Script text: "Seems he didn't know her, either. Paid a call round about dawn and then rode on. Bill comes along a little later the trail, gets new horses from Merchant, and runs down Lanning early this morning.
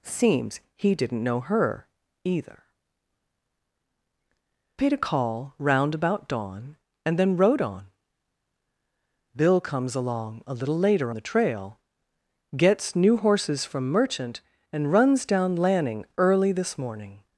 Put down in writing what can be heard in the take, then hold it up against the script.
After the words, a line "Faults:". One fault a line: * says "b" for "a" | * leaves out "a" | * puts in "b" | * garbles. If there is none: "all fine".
"Seems he didn't know her, either. Paid a call round about dawn and then rode on. Bill comes along a little later the trail, gets new horses from Merchant, and runs down Lanning early this morning.
Faults:
all fine